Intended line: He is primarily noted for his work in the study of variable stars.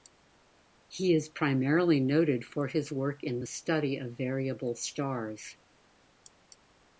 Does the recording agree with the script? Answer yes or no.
yes